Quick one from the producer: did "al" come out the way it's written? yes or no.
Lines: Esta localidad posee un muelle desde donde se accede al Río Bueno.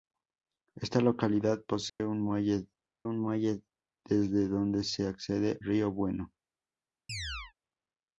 no